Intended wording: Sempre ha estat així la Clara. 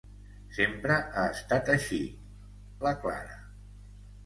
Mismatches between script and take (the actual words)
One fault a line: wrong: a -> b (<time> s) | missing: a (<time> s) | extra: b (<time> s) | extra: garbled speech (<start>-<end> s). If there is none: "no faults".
no faults